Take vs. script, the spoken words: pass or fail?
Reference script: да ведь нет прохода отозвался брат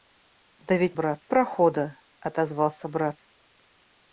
fail